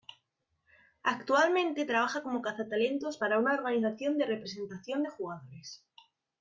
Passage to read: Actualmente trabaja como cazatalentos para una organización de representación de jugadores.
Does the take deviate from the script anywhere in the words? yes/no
no